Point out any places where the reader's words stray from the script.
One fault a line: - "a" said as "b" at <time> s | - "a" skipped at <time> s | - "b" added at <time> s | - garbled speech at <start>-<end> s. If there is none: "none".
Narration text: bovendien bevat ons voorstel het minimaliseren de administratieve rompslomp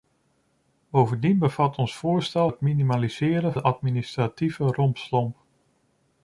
none